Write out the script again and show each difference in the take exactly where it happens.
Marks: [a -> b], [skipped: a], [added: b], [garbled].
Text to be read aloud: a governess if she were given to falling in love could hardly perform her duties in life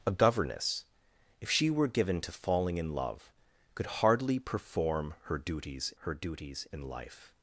a governess if she were given to falling in love could hardly perform her duties [added: her duties] in life